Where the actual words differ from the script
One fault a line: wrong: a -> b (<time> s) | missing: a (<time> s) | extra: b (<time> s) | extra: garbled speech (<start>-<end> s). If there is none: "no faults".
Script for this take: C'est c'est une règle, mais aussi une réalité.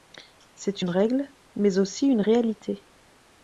missing: c'est (0.8 s)